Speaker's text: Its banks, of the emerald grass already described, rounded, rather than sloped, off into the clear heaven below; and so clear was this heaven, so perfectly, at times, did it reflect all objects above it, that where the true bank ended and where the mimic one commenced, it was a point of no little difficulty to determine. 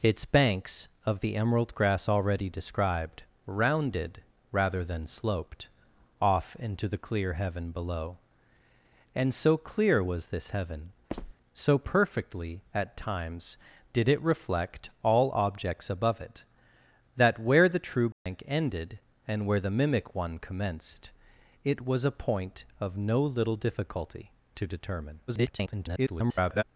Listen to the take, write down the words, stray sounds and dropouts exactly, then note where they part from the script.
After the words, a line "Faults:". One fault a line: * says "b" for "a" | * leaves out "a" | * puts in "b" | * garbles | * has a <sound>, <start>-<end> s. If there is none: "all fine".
Its banks, of the emerald grass already described, rounded, rather than sloped, off into the clear heaven below; and so clear was this heaven, so perfectly, at times, did it reflect all objects above it, that where the true bank ended and where the mimic one commenced, it was a point of no little difficulty to determine. [garbled]
Faults:
* has a squeak, 11.1-11.3 s
* has a dropout, 18.1-18.3 s
* garbles